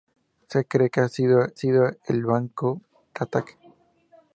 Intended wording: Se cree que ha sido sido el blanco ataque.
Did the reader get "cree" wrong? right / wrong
right